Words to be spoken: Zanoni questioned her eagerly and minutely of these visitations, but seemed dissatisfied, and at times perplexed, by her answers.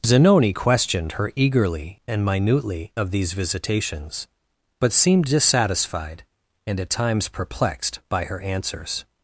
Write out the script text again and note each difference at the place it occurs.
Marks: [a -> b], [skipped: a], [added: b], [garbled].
Zanoni questioned her eagerly and minutely of these visitations, but seemed dissatisfied, and at times perplexed, by her answers.